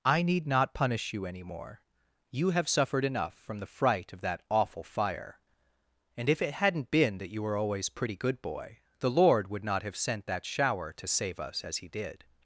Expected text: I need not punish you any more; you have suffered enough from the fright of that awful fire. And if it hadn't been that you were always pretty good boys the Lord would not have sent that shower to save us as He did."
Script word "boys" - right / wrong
wrong